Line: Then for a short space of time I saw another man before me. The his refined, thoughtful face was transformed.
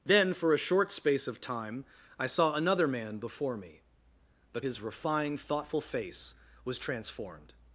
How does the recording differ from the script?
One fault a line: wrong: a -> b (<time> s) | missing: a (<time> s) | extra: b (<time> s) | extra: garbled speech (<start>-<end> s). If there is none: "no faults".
no faults